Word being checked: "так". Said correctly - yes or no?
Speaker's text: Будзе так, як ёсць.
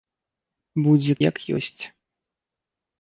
no